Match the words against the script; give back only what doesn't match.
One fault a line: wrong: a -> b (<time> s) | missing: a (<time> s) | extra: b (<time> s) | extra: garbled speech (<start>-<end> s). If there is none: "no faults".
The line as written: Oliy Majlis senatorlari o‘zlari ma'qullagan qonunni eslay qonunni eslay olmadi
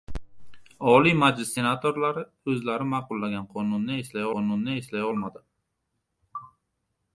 no faults